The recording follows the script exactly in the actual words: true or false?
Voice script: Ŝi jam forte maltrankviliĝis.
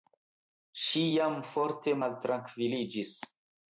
true